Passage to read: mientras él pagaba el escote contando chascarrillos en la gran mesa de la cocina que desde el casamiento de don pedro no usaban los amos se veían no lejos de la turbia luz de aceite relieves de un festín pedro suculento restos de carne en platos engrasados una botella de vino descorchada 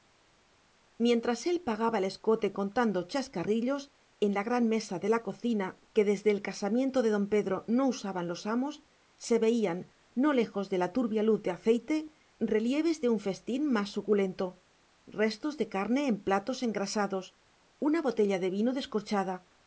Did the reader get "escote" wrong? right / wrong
right